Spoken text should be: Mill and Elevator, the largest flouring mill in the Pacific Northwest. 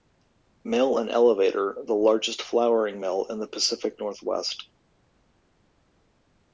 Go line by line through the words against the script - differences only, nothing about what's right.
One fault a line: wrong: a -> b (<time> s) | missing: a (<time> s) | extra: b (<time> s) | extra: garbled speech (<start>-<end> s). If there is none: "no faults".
no faults